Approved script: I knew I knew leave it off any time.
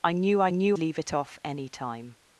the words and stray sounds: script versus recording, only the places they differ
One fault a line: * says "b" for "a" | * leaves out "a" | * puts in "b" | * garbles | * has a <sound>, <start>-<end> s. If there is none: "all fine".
all fine